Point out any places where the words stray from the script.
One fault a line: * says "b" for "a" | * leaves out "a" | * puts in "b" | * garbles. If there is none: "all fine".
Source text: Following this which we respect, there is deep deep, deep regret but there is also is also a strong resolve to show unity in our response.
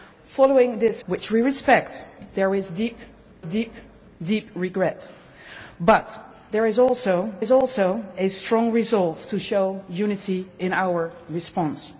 all fine